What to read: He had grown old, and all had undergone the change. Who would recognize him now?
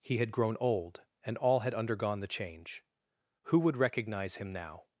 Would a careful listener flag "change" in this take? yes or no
no